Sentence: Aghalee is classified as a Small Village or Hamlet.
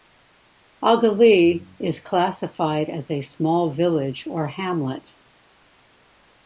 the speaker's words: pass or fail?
pass